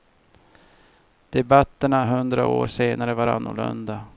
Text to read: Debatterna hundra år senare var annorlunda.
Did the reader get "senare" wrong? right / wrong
right